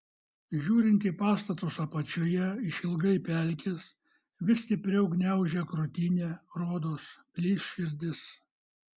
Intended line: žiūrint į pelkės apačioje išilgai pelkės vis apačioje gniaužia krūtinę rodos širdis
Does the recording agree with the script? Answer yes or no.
no